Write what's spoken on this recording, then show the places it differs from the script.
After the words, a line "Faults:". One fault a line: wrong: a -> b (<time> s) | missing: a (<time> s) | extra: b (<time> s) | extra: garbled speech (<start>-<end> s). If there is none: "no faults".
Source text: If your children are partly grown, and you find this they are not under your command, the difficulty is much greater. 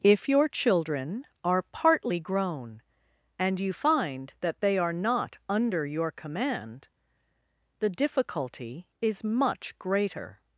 If your children are partly grown, and you find that they are not under your command, the difficulty is much greater.
Faults:
wrong: this -> that (4.4 s)